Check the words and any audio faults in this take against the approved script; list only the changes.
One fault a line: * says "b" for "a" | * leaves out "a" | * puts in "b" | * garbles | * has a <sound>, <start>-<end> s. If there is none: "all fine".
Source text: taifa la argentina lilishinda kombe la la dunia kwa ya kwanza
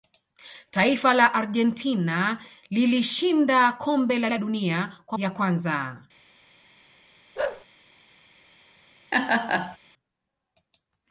* has a bark, 7.4-7.7 s
* has a laugh, 9.1-9.8 s